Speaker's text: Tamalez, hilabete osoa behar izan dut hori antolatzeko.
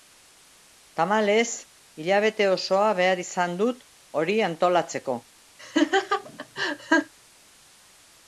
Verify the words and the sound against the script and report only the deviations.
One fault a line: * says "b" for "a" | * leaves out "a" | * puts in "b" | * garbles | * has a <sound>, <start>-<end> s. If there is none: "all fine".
* has a laugh, 5.6-7.1 s